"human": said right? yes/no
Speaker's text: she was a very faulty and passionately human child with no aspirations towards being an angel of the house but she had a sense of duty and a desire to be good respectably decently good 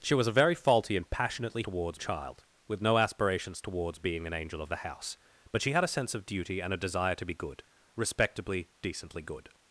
no